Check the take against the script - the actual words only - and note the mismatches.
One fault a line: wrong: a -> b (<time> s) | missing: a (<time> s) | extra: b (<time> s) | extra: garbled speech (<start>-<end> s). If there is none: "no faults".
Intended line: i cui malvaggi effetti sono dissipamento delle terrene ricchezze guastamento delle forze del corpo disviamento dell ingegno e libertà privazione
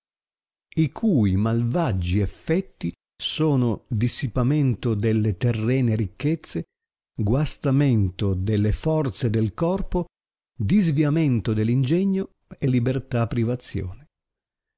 no faults